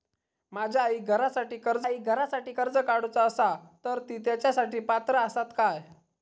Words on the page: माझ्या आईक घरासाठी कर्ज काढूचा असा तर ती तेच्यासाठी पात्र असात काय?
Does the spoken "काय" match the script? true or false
true